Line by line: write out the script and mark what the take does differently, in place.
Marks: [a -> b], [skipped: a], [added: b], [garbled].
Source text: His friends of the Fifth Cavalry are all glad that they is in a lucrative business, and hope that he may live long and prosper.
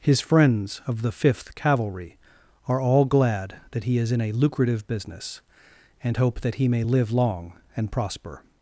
His friends of the Fifth Cavalry are all glad that [they -> he] is in a lucrative business, and hope that he may live long and prosper.